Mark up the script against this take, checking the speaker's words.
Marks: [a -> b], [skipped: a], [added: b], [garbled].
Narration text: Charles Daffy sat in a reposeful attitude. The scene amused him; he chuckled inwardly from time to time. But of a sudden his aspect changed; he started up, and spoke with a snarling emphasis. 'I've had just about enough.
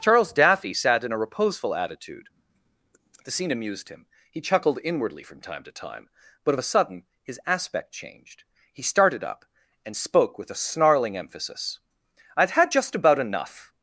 Charles Daffy sat in a reposeful attitude. The scene amused him; he chuckled inwardly from time to time. But of a sudden his aspect changed; he started up, and spoke with a snarling emphasis. 'I've had just about enough.